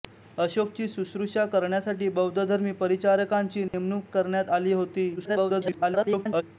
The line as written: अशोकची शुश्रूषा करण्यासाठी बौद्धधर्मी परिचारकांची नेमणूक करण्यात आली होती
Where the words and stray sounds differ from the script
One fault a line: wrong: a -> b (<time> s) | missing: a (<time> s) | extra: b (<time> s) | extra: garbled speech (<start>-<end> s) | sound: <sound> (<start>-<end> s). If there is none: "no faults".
sound: dropout (3.7-3.7 s)
extra: garbled speech (5.2-6.4 s)